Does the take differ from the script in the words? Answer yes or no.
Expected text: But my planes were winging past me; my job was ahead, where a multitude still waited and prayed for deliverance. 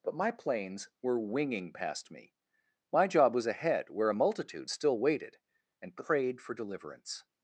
no